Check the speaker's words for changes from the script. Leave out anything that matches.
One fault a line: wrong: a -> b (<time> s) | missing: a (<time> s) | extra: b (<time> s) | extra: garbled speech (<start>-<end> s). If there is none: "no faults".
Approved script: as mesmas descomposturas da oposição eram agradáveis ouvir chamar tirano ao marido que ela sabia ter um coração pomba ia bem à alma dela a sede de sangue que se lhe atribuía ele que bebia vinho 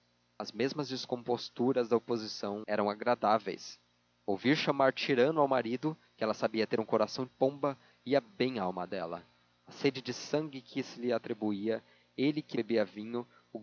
no faults